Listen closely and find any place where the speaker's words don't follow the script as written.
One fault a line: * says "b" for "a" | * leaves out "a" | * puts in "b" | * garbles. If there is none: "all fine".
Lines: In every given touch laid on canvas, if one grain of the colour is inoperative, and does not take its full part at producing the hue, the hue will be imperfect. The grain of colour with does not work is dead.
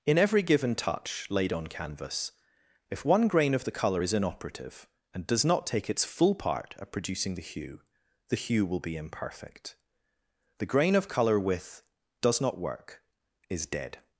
all fine